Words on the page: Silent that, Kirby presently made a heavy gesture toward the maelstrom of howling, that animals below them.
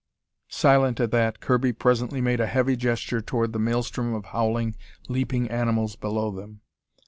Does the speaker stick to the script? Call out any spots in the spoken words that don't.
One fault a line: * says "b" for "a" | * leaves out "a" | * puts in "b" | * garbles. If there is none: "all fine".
* puts in "at"
* says "leaping" for "that"